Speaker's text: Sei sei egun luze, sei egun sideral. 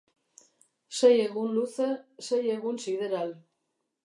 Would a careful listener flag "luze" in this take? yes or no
no